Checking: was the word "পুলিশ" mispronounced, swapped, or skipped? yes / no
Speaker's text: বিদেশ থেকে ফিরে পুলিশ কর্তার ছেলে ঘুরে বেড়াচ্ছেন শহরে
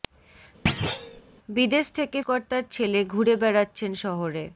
yes